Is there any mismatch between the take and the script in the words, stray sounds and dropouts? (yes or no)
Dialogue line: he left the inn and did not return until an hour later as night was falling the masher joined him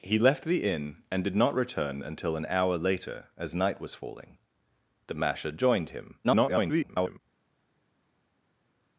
yes